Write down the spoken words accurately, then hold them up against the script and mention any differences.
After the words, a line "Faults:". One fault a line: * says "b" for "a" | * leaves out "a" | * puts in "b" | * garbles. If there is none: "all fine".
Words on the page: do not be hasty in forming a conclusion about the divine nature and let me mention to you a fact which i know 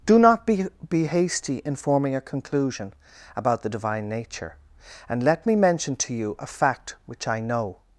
do not be be hasty in forming a conclusion about the divine nature and let me mention to you a fact which i know
Faults:
* puts in "be"